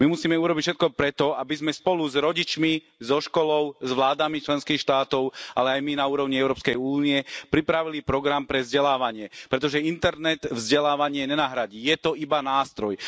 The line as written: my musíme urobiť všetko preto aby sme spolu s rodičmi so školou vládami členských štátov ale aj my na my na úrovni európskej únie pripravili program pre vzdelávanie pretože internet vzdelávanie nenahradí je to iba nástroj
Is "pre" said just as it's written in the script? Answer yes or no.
yes